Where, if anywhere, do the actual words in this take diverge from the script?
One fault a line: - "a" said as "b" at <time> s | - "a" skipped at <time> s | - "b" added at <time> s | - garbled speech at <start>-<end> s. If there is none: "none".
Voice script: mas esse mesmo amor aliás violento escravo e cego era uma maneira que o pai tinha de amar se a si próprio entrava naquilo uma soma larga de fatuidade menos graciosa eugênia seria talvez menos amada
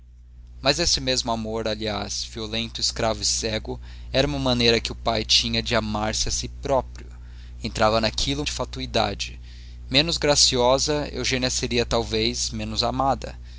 - "uma soma larga" skipped at 8.4 s